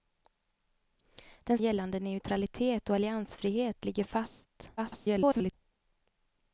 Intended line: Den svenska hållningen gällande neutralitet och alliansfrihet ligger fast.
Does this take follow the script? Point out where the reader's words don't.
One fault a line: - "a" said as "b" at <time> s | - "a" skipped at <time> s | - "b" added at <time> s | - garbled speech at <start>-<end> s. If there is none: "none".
- "svenska hållningen" skipped at 1.6 s
- garbled speech at 4.8-5.5 s